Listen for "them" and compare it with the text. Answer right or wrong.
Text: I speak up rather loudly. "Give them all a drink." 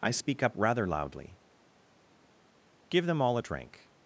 right